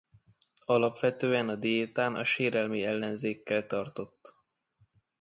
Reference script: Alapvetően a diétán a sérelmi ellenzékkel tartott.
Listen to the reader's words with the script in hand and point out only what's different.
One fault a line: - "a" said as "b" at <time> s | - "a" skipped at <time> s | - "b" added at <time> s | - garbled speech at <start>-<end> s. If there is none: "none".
none